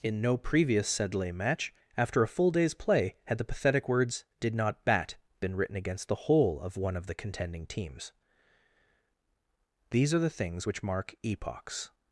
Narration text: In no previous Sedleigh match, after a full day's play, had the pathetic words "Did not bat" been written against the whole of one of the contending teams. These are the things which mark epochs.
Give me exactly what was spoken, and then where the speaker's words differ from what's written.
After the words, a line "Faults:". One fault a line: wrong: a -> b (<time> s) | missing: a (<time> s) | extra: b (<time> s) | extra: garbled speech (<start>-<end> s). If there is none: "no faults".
In no previous Sedleigh match, after a full day's play, had the pathetic words "Did not bat" been written against the whole of one of the contending teams. These are the things which mark epochs.
Faults:
no faults